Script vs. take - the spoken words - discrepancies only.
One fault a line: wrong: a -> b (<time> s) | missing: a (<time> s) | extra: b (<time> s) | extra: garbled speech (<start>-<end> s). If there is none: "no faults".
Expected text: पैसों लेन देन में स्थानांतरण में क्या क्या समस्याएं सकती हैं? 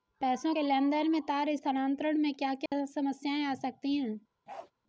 extra: के (0.5 s)
extra: तार (1.2 s)
extra: आ (3.4 s)